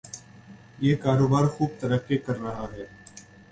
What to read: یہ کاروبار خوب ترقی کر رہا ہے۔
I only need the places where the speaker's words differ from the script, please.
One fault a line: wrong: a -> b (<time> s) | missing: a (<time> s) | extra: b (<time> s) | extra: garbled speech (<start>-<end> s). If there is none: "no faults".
no faults